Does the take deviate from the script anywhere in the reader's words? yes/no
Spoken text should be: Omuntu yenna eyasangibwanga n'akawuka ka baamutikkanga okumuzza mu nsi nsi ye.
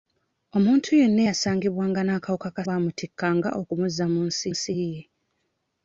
no